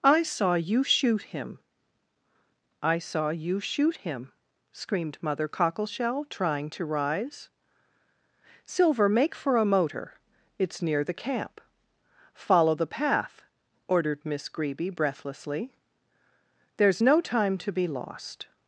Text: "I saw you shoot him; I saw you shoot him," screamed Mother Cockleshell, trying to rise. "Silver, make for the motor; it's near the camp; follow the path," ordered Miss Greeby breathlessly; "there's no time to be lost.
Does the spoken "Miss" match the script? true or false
true